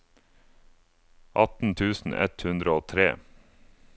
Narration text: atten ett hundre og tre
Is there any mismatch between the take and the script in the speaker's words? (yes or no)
yes